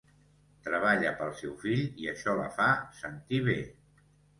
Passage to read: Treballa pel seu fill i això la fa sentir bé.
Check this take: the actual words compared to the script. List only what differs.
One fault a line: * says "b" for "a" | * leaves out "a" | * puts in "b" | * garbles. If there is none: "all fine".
all fine